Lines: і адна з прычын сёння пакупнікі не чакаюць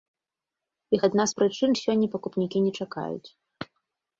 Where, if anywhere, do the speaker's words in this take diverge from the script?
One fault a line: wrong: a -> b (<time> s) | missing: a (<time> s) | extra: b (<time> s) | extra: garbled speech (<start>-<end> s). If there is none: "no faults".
no faults